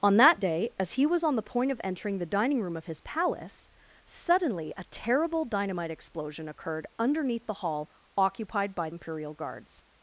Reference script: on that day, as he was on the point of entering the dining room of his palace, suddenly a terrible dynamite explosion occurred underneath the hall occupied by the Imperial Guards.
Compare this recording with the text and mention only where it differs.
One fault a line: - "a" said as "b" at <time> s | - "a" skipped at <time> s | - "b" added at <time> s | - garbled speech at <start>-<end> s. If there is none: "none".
- "the" skipped at 8.9 s